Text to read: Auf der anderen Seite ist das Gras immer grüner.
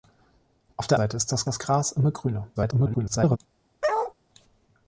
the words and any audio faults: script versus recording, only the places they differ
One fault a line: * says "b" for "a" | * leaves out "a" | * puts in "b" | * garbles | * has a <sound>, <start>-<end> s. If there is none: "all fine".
* leaves out "anderen"
* puts in "das"
* garbles
* has a bark, 3.8-4.1 s